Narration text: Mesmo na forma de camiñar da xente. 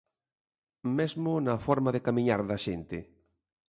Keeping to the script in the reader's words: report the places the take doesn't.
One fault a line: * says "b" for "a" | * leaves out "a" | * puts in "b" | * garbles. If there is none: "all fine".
all fine